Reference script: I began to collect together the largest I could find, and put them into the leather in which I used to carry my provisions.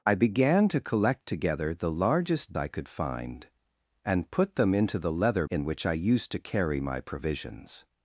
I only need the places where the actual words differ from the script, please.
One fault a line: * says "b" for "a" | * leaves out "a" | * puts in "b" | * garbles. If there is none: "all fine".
all fine